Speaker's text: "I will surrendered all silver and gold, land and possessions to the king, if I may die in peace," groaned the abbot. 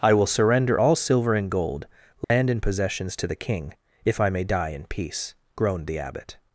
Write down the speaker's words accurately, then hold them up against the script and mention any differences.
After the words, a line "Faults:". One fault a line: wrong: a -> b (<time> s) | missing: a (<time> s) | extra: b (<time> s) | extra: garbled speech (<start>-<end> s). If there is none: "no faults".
"I will surrender all silver and gold, land and possessions to the king, if I may die in peace," groaned the abbot.
Faults:
wrong: surrendered -> surrender (0.3 s)